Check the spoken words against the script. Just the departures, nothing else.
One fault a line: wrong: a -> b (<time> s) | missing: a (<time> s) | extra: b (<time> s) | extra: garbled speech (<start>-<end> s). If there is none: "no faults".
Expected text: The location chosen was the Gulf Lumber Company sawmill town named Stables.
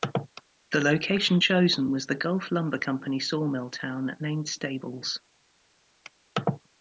no faults